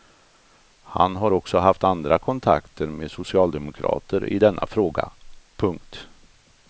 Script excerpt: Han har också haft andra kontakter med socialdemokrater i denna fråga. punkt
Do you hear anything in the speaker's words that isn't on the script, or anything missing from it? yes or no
no